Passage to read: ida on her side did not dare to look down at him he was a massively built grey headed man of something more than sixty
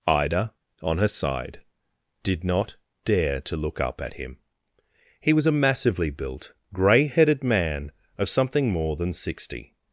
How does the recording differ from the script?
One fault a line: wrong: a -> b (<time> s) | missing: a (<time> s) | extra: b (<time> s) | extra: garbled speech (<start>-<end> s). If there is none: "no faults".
wrong: down -> up (3.8 s)